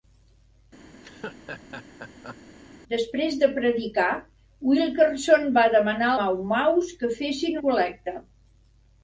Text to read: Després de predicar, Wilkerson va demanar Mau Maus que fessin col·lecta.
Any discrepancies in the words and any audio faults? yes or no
yes